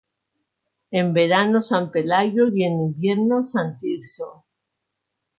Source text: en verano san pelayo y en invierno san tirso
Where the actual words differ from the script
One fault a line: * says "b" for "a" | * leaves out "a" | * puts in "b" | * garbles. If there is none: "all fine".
all fine